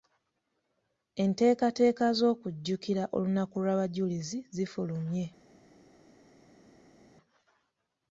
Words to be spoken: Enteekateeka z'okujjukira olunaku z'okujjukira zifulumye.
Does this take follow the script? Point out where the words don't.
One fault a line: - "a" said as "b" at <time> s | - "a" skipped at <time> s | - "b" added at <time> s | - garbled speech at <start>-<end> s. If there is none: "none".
- "z'okujjukira" said as "lw'abajulizi" at 3.6 s